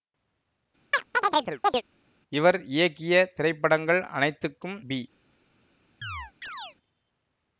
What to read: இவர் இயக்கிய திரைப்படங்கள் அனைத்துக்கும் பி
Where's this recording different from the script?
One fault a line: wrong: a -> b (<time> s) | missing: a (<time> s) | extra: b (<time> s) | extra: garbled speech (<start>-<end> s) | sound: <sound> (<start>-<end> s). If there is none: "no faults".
sound: chirp (0.9-1.8 s)
sound: chirp (6.0-6.8 s)